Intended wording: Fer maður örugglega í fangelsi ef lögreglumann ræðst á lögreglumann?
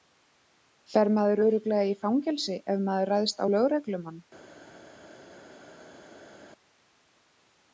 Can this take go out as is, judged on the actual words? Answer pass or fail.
fail